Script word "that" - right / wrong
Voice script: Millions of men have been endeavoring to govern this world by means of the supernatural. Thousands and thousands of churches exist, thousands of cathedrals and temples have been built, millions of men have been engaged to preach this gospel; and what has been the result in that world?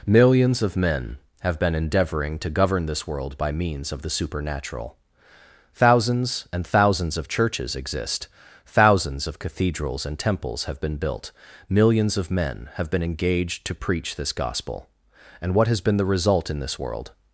wrong